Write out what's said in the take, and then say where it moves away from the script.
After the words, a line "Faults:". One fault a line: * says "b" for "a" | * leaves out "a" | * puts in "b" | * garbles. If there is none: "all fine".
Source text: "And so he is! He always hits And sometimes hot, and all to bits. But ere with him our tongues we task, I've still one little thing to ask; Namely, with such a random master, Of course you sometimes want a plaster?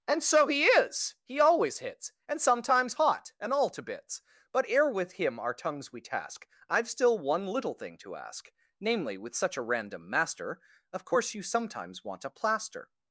"And so he is! He always hits And sometimes hot, and all to bits. But ere with him our tongues we task, I've still one little thing to ask; Namely, with such a random master, Of course you sometimes want a plaster?
Faults:
all fine